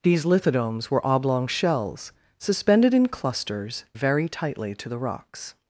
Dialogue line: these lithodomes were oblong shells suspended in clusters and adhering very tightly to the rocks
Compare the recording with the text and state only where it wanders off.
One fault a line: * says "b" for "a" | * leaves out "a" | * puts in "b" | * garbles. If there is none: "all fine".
* leaves out "and adhering"